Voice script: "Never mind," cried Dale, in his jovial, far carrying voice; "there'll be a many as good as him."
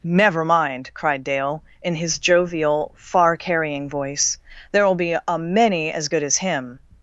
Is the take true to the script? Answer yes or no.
yes